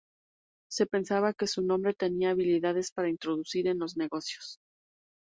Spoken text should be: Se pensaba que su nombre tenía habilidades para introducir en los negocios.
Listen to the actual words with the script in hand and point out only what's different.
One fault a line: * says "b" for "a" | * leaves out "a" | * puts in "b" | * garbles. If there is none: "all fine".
all fine